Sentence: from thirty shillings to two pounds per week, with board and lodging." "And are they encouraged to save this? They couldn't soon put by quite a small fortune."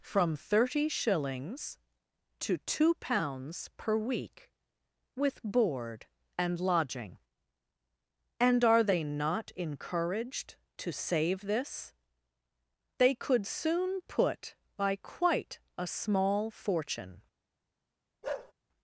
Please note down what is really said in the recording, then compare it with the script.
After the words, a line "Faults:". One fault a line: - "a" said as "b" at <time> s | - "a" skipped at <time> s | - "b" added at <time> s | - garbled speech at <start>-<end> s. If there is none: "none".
from thirty shillings to two pounds per week, with board and lodging." "And are they not encouraged to save this? They could soon put by quite a small fortune."
Faults:
- "not" added at 9.0 s
- "couldn't" said as "could" at 13.1 s